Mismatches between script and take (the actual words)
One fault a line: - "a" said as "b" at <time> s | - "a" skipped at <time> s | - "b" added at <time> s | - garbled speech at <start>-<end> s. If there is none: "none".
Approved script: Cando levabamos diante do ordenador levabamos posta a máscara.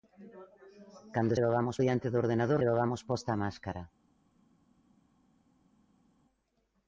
none